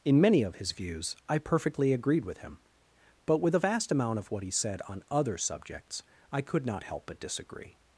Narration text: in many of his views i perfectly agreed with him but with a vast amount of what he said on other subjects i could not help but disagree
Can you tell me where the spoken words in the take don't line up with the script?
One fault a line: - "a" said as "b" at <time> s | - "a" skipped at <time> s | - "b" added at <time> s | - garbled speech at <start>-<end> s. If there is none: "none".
none